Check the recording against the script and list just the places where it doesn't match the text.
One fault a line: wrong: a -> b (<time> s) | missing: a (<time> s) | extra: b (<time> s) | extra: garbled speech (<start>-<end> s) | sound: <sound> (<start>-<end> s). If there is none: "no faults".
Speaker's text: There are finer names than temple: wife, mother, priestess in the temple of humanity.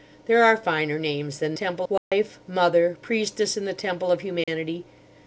sound: dropout (2.0-2.1 s)
sound: dropout (4.4-4.5 s)